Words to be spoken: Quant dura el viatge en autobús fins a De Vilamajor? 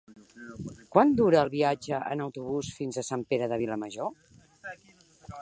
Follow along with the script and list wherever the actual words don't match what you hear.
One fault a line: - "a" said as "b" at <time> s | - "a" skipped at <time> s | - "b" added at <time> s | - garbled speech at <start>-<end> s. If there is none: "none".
- "Sant Pere" added at 3.1 s